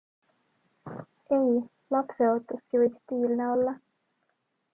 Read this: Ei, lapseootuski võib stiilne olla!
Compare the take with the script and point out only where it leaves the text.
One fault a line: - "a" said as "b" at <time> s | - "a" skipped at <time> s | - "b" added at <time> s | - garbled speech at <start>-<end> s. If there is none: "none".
none